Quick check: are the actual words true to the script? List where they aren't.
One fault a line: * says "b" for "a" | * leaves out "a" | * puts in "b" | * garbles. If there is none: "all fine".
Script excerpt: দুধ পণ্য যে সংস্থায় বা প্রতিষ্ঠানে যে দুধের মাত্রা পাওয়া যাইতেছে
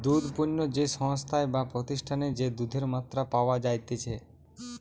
all fine